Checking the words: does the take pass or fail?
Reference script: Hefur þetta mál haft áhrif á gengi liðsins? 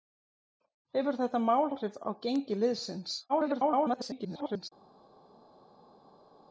fail